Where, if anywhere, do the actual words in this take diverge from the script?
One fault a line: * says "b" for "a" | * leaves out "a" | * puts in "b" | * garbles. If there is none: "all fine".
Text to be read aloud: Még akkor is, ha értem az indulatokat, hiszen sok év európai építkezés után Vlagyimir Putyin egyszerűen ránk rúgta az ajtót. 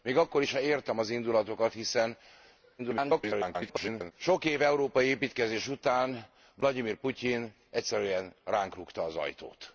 * garbles